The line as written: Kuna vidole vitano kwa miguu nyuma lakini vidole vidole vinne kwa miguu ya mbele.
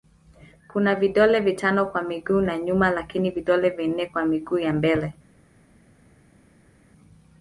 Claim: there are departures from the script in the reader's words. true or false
true